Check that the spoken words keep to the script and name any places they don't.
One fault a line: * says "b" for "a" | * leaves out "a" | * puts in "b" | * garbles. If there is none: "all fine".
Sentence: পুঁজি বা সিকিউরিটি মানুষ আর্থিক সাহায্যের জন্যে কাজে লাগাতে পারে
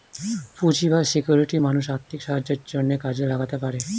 all fine